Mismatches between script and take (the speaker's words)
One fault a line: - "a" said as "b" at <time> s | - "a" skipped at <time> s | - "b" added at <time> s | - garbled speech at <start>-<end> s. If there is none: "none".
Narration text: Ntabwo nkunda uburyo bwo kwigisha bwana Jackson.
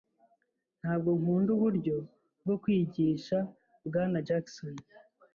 none